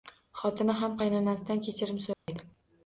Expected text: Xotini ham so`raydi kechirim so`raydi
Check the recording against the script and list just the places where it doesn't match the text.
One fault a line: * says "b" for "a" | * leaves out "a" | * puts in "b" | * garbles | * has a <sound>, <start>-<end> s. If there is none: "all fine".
* says "qaynonasidan" for "so`raydi"
* has a dropout, 2.1-2.3 s